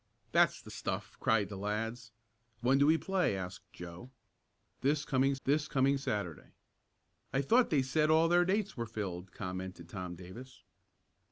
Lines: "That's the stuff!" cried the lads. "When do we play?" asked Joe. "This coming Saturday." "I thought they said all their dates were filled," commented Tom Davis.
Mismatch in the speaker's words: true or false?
true